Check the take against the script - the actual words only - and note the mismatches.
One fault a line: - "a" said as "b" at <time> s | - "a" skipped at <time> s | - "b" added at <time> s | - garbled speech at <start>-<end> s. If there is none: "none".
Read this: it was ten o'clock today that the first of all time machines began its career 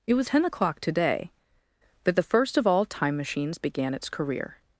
none